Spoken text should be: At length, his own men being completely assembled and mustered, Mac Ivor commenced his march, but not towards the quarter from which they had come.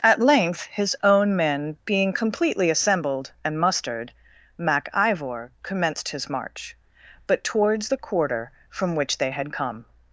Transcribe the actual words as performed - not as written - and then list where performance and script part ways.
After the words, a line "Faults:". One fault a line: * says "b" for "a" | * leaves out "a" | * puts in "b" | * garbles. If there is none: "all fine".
At length, his own men being completely assembled and mustered, Mac Ivor commenced his march, but towards the quarter from which they had come.
Faults:
* leaves out "not"